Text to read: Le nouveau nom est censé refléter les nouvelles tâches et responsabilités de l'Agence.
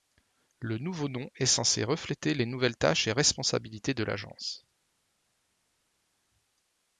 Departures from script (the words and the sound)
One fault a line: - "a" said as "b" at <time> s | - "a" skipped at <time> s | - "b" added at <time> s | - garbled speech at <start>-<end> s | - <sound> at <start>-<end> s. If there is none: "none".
none